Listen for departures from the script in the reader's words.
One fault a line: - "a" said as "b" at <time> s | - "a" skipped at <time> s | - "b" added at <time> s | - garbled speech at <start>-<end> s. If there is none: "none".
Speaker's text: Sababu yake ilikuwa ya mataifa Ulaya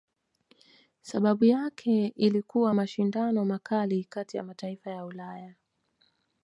- "mashindano makali kati" added at 2.7 s
- "ya" added at 4.9 s